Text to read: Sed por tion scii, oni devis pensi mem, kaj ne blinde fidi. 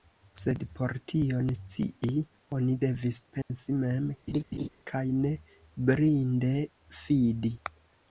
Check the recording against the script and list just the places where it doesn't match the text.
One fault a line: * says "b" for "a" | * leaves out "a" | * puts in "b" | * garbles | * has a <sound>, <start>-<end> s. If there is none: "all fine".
* has a dropout, 3.4-3.5 s
* has a laugh, 4.3-4.7 s